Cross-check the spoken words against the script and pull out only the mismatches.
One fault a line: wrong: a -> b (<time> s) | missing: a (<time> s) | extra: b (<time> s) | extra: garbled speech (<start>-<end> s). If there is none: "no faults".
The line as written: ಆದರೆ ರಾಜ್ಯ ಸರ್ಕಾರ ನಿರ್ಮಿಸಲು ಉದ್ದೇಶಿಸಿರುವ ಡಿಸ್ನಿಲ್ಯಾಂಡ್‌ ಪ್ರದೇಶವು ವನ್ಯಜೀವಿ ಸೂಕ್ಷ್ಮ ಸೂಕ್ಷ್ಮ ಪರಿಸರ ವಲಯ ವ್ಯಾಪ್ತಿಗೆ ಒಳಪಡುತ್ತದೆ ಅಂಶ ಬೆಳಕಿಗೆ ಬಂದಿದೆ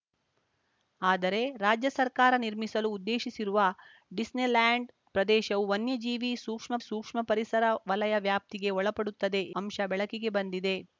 no faults